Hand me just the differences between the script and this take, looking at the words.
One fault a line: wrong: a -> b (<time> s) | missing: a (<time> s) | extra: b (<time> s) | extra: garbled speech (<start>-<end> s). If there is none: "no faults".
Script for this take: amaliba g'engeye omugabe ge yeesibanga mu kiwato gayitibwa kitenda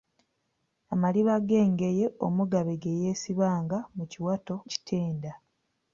missing: gayitibwa (4.5 s)